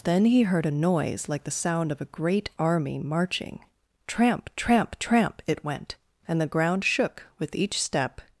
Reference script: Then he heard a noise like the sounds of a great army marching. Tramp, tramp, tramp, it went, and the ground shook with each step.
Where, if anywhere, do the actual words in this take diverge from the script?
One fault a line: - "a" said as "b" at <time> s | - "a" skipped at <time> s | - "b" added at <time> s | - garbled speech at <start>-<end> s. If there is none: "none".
- "sounds" said as "sound" at 1.5 s